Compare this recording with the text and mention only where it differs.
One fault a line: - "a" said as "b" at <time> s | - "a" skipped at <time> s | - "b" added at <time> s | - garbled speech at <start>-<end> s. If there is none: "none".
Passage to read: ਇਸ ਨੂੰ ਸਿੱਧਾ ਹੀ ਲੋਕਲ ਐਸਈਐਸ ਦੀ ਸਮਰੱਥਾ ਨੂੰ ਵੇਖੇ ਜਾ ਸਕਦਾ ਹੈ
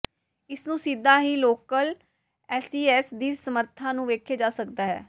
none